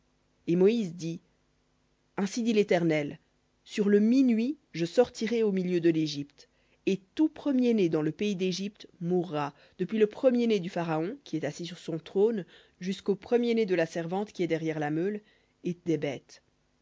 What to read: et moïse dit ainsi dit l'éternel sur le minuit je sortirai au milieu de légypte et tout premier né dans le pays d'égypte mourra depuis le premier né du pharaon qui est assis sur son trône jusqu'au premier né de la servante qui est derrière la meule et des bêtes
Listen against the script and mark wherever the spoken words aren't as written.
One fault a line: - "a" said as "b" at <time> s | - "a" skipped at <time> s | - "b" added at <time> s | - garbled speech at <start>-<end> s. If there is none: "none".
none